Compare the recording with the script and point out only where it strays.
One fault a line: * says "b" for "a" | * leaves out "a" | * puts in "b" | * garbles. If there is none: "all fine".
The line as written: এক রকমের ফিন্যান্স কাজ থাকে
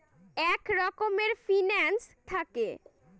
* leaves out "কাজ"